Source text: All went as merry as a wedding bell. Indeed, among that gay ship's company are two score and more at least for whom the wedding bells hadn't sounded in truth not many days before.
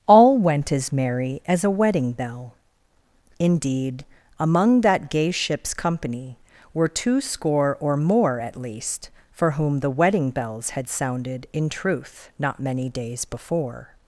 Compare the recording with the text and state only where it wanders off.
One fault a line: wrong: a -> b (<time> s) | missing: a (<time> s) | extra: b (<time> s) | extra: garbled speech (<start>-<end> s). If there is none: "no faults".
wrong: are -> were (6.7 s)
wrong: and -> or (7.8 s)
wrong: hadn't -> had (10.7 s)